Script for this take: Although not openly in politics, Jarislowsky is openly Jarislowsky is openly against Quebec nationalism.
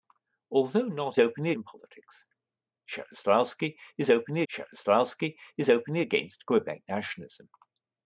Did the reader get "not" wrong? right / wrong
right